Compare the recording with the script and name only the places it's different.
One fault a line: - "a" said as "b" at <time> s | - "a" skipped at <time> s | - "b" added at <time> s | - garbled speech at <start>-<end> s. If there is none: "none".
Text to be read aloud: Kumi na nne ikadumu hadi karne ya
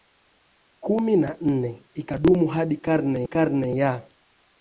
- "karne" added at 3.2 s